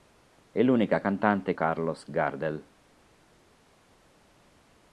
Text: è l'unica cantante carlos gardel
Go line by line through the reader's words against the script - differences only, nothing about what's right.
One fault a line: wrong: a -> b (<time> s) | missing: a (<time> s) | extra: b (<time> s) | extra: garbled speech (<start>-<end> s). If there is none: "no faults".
no faults